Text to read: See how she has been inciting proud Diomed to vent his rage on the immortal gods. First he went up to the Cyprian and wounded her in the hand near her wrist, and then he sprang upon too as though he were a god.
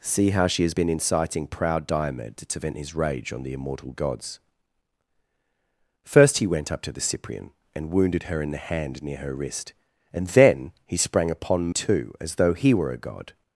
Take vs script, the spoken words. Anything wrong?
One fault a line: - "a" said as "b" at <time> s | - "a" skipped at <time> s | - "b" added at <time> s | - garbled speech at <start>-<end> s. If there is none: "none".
none